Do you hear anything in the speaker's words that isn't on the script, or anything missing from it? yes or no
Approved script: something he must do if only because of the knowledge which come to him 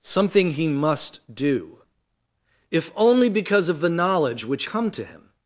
no